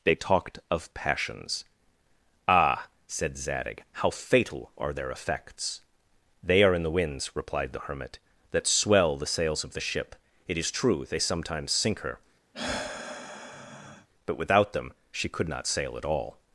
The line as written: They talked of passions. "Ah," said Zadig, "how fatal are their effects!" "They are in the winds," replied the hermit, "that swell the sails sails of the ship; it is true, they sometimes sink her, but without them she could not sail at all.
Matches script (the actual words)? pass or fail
fail